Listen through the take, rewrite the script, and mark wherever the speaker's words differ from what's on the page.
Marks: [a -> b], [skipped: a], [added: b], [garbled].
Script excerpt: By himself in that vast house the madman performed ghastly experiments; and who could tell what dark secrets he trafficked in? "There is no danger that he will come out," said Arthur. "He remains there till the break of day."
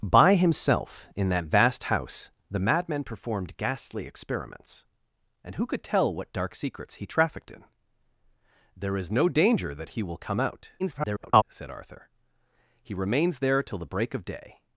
By himself in that vast house the madman performed ghastly experiments; and who could tell what dark secrets he trafficked in? "There is no danger that he will come out," [garbled] said Arthur. "He remains there till the break of day."